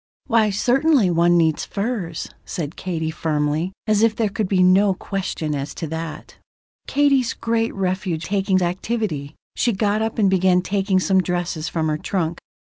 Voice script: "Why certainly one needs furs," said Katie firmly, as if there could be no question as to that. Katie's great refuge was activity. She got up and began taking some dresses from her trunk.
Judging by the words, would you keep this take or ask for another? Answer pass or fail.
fail